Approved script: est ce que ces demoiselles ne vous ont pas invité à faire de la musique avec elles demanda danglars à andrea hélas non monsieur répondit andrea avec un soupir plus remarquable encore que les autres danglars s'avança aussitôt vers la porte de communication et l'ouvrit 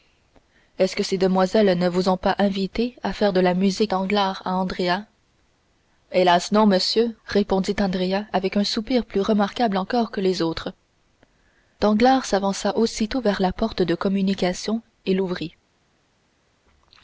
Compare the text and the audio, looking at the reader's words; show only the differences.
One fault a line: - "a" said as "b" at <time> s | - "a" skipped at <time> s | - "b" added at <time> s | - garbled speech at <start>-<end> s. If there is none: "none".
- "avec elles demanda" skipped at 3.9 s